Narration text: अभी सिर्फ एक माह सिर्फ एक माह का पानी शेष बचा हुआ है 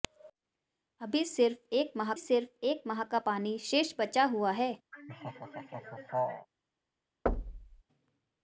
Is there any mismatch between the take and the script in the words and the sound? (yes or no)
yes